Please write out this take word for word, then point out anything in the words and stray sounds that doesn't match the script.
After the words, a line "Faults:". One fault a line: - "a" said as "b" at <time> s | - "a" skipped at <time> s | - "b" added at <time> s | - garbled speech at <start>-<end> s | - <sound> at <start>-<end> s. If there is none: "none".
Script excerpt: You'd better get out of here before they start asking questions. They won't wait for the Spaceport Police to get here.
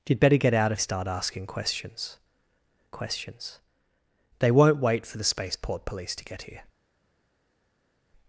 You'd better get out of start asking questions questions. They won't wait for the Spaceport Police to get here.
Faults:
- "here before they" skipped at 0.8 s
- "questions" added at 2.9 s